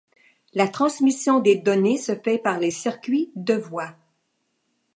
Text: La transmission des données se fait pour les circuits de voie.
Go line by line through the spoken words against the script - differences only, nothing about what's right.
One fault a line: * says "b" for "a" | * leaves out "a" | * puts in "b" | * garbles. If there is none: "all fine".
* says "par" for "pour"